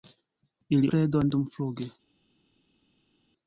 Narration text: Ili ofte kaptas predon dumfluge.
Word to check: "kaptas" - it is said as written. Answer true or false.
false